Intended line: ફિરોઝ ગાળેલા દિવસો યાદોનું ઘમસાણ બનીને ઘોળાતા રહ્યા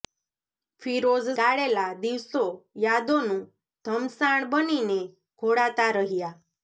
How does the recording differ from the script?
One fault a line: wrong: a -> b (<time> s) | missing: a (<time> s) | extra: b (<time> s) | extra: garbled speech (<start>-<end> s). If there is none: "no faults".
no faults